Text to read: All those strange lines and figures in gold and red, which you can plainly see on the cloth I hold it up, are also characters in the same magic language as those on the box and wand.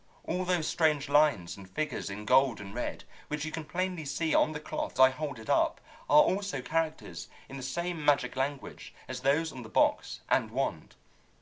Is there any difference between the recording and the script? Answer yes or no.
no